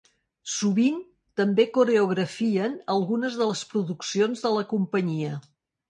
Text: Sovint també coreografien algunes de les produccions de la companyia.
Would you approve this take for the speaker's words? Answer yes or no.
yes